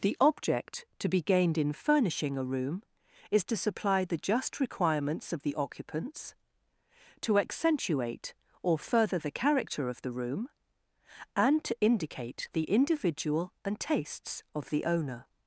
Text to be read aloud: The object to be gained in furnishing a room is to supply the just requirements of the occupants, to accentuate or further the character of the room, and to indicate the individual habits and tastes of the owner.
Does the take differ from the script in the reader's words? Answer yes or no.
yes